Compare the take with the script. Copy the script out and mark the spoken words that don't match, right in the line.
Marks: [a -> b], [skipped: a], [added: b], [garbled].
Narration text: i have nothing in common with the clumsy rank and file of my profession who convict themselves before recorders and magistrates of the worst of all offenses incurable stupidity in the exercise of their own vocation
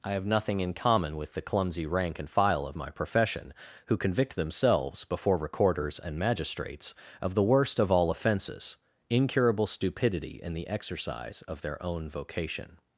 i have nothing in common with the clumsy rank and file of my profession who convict themselves before recorders and magistrates of the worst of all offenses incurable stupidity in the exercise of their own vocation